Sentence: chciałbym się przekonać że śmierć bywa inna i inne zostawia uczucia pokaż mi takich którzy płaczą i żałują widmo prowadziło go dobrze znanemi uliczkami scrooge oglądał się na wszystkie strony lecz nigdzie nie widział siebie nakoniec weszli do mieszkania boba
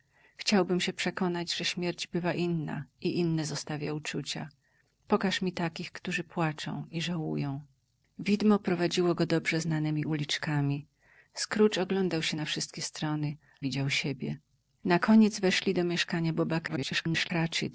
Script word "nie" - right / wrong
wrong